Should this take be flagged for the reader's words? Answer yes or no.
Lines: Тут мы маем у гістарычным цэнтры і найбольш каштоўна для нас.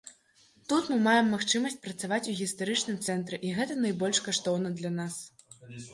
yes